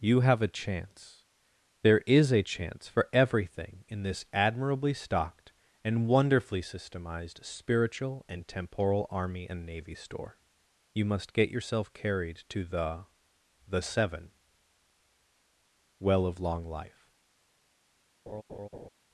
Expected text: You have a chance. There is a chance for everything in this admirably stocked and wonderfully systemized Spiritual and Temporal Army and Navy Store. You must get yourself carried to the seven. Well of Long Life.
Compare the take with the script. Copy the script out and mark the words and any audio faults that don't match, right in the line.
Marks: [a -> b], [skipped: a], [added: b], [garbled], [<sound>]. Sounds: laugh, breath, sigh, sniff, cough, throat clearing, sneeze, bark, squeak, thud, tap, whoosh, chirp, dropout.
You have a chance. There is a chance for everything in this admirably stocked and wonderfully systemized Spiritual and Temporal Army and Navy Store. You must get yourself carried to the [added: the] seven. Well of Long Life. [laugh]